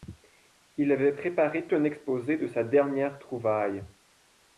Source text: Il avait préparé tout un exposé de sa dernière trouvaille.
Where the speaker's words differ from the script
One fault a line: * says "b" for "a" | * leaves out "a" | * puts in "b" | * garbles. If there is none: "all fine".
* leaves out "tout"